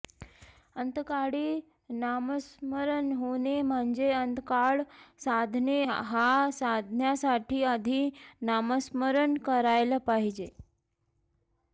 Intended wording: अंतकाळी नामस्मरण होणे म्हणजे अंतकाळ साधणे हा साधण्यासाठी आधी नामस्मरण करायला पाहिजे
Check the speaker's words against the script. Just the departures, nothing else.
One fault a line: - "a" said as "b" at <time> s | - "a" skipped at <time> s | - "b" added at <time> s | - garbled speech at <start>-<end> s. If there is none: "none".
none